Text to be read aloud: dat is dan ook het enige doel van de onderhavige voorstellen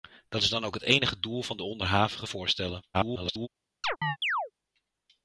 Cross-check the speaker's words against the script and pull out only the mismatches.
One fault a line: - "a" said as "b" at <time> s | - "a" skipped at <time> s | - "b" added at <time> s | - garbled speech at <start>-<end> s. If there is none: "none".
- garbled speech at 2.9-3.5 s